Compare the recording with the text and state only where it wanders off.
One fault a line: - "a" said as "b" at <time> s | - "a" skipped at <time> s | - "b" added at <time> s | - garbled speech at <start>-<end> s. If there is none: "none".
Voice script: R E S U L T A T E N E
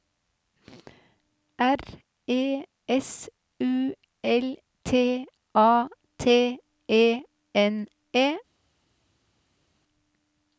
none